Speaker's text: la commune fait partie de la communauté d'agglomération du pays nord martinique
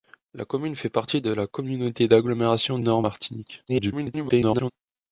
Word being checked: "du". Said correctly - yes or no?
no